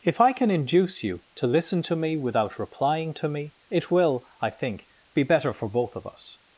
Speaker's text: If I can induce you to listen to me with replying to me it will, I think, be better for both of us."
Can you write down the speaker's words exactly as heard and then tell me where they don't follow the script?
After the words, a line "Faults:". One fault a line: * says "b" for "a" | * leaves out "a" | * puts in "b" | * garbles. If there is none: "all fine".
If I can induce you to listen to me without replying to me it will, I think, be better for both of us."
Faults:
* says "without" for "with"